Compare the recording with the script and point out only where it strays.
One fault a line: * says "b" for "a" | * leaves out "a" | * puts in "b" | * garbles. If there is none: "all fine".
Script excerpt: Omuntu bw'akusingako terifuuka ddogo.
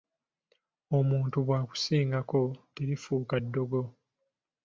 all fine